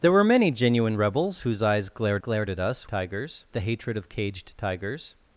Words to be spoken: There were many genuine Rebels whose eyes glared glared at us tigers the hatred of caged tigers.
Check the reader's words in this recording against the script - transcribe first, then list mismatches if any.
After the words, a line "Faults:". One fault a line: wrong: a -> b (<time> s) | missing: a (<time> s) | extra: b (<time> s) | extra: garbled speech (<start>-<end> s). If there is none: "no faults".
There were many genuine Rebels whose eyes glared glared at us tigers the hatred of caged tigers.
Faults:
no faults